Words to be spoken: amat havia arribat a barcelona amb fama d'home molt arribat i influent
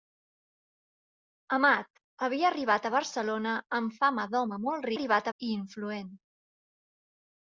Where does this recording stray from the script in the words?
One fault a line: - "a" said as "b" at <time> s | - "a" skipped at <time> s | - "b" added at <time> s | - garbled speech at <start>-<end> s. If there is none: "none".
none